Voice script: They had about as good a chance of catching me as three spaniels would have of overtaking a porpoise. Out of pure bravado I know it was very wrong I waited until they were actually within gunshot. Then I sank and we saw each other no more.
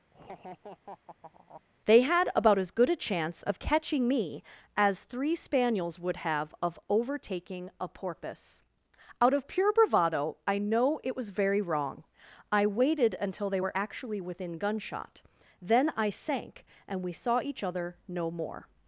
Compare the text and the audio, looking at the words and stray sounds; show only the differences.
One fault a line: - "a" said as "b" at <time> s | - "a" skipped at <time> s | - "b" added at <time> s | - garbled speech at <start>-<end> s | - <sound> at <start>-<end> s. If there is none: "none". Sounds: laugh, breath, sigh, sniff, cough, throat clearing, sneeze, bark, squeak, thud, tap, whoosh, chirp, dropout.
- laugh at 0.1-1.6 s